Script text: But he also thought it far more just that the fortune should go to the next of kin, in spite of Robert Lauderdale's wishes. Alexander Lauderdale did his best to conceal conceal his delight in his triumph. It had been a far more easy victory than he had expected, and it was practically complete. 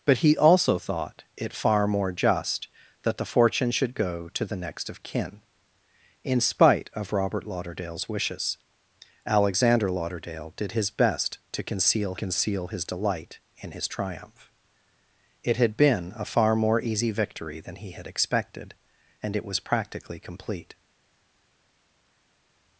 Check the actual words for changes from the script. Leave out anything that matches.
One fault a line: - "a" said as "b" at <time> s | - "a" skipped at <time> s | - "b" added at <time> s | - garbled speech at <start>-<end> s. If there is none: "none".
none